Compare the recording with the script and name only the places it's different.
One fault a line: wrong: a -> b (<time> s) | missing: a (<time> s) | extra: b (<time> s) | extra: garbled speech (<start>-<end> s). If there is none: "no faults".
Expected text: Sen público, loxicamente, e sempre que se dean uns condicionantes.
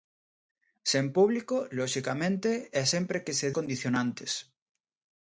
missing: dean uns (3.5 s)